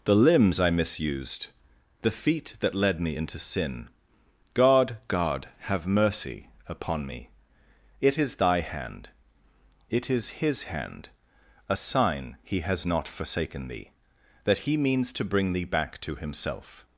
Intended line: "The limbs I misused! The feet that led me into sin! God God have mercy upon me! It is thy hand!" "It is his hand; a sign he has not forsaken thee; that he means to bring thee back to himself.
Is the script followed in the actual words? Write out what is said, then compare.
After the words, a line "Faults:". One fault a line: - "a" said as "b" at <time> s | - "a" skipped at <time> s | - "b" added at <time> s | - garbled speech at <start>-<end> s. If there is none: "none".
"The limbs I misused! The feet that led me into sin! God God have mercy upon me! It is thy hand!" "It is his hand; a sign he has not forsaken thee; that he means to bring thee back to himself.
Faults:
none